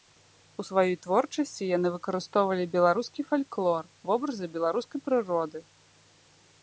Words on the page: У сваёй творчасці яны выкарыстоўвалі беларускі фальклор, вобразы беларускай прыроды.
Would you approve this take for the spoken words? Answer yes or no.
yes